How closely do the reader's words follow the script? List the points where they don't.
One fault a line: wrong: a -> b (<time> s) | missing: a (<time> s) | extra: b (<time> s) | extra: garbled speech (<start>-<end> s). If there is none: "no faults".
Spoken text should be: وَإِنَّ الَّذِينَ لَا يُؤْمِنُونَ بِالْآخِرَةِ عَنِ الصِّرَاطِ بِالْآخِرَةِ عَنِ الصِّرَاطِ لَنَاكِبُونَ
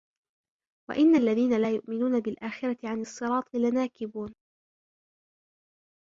missing: بِالْآخِرَةِ عَنِ الصِّرَاطِ (3.5 s)